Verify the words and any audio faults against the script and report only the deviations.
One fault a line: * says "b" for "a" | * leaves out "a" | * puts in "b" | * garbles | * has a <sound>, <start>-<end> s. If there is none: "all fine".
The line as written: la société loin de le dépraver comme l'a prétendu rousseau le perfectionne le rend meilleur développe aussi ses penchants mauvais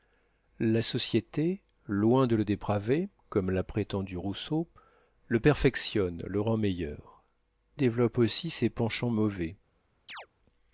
* has a chirp, 10.1-10.3 s